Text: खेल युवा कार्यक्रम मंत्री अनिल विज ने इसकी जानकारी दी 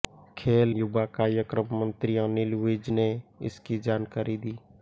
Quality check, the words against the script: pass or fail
pass